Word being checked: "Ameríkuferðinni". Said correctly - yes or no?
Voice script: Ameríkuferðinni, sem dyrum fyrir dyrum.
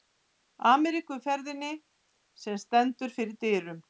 yes